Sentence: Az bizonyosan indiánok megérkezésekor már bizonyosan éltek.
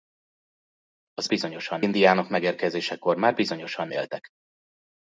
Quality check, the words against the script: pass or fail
pass